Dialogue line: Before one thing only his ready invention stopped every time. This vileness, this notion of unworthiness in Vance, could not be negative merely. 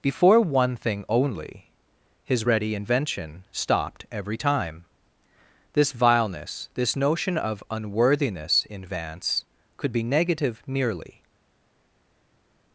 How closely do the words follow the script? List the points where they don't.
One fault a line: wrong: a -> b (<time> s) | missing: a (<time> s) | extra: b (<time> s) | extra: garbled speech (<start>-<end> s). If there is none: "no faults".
missing: not (9.9 s)